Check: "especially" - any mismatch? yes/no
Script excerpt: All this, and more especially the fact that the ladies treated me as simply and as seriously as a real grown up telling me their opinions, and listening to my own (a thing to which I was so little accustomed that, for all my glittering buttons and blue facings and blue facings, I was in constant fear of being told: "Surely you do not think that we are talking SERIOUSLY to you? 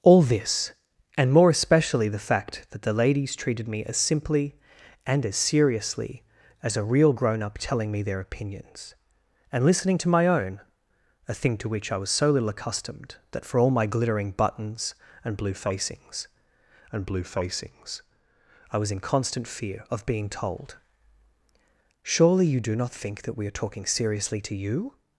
no